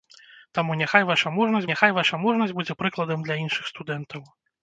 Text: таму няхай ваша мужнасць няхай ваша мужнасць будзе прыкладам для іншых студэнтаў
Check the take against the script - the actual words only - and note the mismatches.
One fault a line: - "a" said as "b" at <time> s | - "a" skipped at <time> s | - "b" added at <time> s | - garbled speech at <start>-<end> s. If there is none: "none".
none